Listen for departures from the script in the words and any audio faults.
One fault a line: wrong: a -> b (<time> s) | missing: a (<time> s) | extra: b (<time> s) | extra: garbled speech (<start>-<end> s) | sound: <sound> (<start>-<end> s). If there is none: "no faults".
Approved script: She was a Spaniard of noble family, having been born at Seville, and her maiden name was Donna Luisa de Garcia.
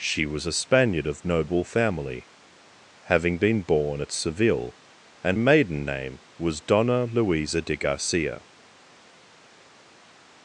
missing: her (5.4 s)